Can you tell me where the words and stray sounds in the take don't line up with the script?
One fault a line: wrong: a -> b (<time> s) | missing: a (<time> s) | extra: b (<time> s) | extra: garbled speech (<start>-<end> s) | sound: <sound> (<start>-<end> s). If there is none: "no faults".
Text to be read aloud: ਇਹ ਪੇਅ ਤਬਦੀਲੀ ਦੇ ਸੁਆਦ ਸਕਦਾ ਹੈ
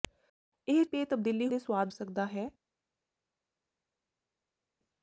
no faults